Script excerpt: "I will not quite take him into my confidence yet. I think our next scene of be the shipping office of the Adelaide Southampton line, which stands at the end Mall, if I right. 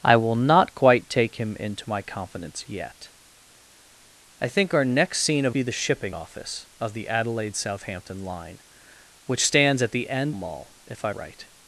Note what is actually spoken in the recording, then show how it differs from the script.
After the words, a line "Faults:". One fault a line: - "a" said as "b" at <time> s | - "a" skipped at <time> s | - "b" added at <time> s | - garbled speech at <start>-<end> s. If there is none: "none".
"I will not quite take him into my confidence yet. I think our next scene of be the shipping office of the Adelaide Southampton line, which stands at the end Mall, if I right.
Faults:
none